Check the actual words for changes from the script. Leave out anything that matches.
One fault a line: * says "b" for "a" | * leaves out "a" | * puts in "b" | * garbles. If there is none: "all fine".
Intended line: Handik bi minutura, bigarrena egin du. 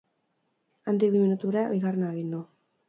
all fine